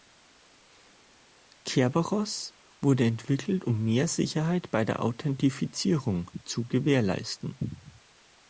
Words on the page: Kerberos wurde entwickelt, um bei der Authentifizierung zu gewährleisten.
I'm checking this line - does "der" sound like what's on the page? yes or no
yes